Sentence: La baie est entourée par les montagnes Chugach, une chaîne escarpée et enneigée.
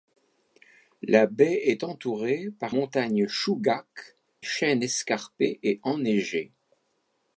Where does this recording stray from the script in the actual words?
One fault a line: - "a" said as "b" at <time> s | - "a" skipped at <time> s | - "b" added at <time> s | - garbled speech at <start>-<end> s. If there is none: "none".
- "les" skipped at 2.8 s
- "une" skipped at 4.2 s